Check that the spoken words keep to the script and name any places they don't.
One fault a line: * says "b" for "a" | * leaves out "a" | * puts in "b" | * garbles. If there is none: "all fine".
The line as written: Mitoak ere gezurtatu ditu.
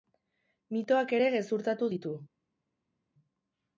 all fine